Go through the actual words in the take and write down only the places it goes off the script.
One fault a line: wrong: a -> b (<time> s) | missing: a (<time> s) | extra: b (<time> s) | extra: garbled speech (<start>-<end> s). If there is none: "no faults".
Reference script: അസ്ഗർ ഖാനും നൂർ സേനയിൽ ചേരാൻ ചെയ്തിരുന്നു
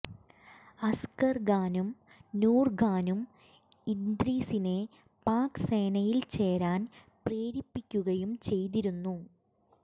extra: ഖാനും ഇദ്രീസിനെ പാക് (2.8 s)
extra: പ്രേരിപ്പിക്കുകയും (7.3 s)